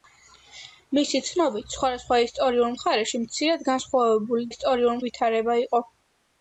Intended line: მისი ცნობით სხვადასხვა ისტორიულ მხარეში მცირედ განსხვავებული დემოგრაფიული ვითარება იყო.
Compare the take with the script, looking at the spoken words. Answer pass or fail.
fail